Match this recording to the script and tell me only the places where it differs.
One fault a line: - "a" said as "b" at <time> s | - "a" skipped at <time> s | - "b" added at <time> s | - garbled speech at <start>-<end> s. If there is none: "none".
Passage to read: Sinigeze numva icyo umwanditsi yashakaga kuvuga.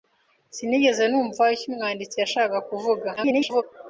- garbled speech at 3.2-3.6 s